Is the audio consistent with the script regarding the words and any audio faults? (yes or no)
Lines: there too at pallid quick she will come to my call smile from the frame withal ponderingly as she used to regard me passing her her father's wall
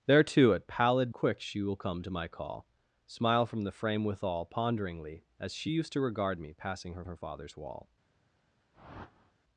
no